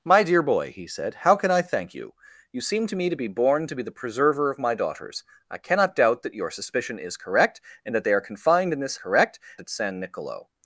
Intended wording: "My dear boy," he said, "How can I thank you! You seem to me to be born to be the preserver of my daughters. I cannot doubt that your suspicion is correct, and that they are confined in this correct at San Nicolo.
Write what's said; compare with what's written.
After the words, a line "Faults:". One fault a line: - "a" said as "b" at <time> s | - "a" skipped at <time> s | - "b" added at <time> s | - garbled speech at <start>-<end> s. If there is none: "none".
"My dear boy," he said, "How can I thank you! You seem to me to be born to be the preserver of my daughters. I cannot doubt that your suspicion is correct, and that they are confined in this correct at San Nicolo.
Faults:
none